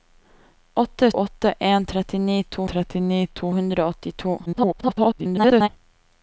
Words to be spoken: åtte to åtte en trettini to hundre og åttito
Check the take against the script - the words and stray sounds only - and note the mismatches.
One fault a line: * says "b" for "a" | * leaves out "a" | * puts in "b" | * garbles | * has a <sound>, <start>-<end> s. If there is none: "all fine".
* leaves out "to"
* puts in "trettini to"
* garbles